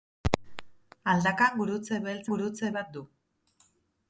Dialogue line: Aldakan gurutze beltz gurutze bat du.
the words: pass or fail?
pass